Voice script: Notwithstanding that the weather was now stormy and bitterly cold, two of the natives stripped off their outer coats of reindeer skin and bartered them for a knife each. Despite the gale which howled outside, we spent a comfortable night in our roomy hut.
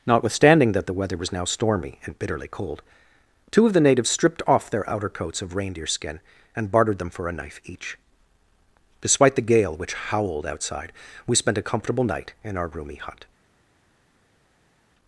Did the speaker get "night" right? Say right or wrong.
right